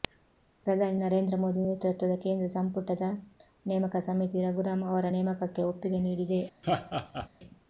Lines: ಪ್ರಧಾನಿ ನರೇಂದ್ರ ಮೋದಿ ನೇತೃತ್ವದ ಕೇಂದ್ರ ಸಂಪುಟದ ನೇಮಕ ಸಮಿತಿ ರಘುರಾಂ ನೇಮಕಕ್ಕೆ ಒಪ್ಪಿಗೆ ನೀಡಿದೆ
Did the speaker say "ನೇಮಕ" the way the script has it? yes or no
yes